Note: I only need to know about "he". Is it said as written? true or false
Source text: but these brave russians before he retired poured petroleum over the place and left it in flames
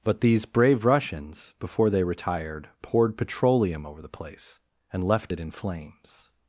false